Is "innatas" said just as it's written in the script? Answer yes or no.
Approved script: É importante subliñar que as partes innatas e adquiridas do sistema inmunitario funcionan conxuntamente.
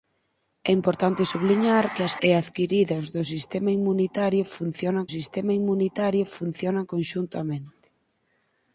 no